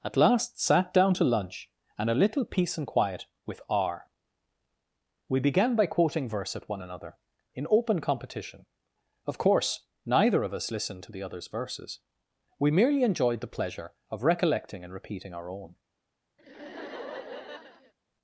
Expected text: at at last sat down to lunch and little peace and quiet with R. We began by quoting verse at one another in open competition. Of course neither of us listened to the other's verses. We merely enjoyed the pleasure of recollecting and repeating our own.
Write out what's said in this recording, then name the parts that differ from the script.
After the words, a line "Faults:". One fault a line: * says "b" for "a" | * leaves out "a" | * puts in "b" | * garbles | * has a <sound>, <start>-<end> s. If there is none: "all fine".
at last sat down to lunch and a little peace and quiet with R. We began by quoting verse at one another in open competition. Of course neither of us listened to the other's verses. We merely enjoyed the pleasure of recollecting and repeating our own.
Faults:
* leaves out "at"
* puts in "a"
* has a laugh, 16.4-17.9 s